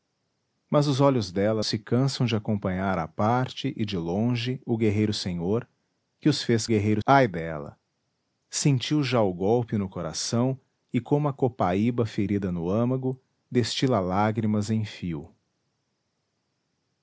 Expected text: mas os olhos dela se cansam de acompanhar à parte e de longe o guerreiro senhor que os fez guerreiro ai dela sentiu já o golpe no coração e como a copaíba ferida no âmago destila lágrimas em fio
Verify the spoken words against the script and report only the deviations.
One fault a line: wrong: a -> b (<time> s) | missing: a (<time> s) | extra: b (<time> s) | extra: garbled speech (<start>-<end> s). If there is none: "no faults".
no faults